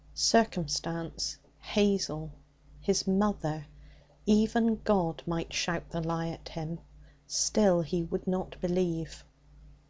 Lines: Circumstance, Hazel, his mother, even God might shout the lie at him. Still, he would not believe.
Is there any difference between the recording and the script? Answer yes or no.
no